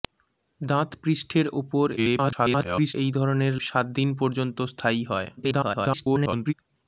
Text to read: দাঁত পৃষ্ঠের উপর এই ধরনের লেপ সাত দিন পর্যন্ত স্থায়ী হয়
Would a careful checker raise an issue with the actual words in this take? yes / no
yes